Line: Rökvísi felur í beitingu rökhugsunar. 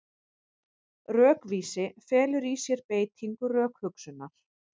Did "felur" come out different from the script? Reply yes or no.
no